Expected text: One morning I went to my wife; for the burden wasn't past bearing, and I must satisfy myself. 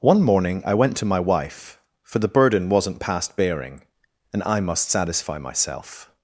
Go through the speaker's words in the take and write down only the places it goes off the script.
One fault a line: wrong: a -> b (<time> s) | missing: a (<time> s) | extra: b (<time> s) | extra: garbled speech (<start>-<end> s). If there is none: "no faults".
no faults